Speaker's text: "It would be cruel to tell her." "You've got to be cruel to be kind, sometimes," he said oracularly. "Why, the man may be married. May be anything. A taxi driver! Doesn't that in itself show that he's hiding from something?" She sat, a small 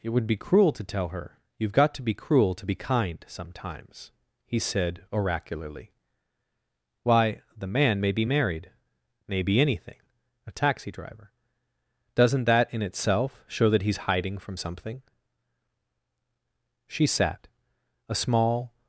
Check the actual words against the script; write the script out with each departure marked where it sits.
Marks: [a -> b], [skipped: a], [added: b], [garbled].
"It would be cruel to tell her." "You've got to be cruel to be kind, sometimes," he said oracularly. "Why, the man may be married. May be anything. A taxi driver! Doesn't that in itself show that he's hiding from something?" She sat, a small